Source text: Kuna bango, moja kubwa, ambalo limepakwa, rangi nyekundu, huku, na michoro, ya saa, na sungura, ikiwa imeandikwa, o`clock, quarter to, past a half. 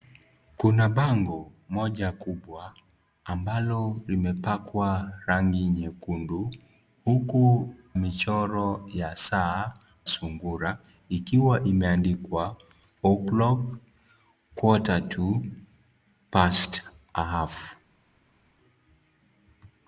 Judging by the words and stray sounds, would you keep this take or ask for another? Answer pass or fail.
fail